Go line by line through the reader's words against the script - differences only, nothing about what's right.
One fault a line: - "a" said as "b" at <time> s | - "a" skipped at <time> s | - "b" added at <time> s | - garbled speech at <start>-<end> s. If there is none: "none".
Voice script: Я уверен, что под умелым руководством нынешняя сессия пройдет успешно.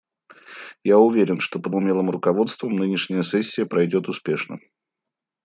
none